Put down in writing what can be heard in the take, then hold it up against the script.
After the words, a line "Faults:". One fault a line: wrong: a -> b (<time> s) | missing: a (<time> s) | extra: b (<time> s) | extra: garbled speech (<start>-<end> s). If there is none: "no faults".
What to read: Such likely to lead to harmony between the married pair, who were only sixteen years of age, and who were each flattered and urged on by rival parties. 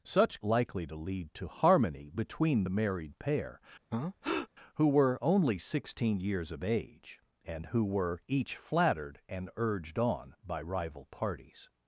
Such likely to lead to harmony between the married pair, who were only sixteen years of age, and who were each flattered and urged on by rival parties.
Faults:
no faults